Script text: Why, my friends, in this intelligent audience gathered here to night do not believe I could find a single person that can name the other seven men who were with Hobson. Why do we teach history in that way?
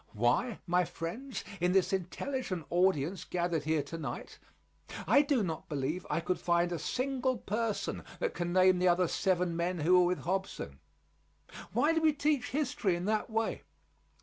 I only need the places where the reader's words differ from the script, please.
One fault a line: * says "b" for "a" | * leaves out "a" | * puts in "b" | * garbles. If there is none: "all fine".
* puts in "I"